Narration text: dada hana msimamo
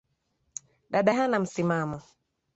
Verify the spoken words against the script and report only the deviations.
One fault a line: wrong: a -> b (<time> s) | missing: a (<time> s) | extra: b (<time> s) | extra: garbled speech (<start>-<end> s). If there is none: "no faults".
no faults